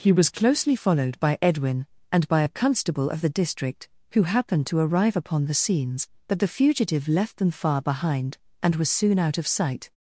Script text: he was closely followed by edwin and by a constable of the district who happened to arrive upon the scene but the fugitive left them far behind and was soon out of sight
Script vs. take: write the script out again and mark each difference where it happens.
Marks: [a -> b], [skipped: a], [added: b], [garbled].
he was closely followed by edwin and by a constable of the district who happened to arrive upon the [scene -> scenes] but the fugitive left them far behind and was soon out of sight